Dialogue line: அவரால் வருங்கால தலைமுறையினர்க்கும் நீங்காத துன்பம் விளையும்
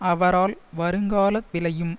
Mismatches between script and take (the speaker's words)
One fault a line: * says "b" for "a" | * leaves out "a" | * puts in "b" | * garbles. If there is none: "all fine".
* leaves out "தலைமுறையினர்க்கும் நீங்காத துன்பம்"